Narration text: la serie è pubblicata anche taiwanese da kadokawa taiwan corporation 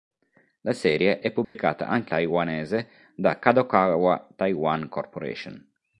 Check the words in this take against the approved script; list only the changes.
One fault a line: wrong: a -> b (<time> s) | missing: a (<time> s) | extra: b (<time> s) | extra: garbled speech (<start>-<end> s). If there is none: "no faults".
no faults